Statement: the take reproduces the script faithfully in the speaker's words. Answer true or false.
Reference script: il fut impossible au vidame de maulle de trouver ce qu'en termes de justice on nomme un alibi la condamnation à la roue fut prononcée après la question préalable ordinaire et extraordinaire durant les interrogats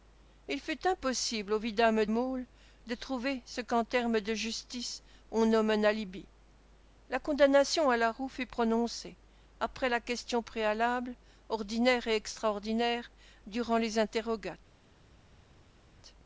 false